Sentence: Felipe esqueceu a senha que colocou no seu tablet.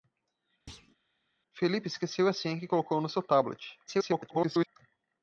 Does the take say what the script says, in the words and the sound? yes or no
no